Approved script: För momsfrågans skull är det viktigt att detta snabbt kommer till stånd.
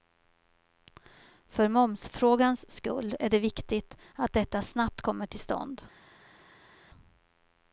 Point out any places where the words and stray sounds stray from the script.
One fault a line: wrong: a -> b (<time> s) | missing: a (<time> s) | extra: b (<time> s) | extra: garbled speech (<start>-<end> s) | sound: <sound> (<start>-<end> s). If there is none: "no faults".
no faults